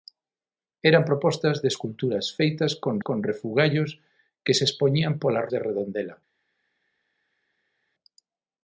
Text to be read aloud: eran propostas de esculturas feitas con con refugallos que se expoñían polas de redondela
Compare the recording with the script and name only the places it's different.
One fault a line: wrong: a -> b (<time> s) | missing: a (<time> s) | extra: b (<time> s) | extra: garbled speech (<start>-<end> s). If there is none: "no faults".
no faults